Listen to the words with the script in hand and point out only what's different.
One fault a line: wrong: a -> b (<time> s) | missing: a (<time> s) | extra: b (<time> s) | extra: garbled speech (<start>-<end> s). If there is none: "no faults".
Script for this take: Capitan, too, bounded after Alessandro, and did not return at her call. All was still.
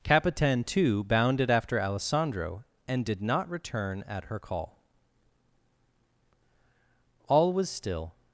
no faults